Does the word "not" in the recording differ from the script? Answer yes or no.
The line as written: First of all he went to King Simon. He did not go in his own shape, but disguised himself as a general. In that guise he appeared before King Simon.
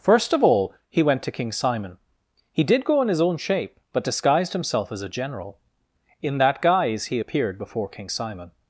yes